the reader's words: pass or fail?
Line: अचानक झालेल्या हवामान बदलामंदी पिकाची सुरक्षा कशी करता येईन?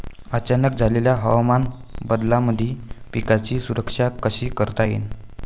pass